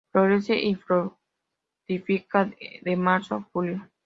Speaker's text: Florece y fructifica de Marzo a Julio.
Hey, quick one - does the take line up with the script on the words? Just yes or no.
yes